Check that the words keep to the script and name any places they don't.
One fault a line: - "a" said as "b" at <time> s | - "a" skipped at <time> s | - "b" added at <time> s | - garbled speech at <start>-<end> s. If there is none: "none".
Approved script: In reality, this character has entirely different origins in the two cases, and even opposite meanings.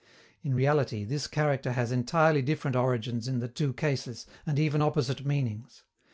none